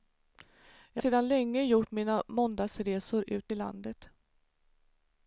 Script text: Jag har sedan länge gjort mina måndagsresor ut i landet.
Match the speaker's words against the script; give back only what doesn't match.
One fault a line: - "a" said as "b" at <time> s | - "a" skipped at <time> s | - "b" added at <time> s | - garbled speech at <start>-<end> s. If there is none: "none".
- "har" skipped at 1.0 s